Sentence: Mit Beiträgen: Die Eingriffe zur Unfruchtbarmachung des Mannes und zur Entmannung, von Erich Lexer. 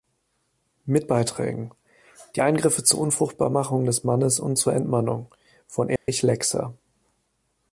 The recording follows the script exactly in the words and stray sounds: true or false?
false